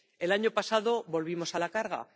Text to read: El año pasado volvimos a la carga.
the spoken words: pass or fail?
pass